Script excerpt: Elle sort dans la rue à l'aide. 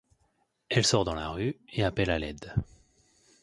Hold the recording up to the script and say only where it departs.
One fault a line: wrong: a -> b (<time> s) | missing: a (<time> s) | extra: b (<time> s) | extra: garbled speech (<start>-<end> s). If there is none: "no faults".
extra: et appelle (1.7 s)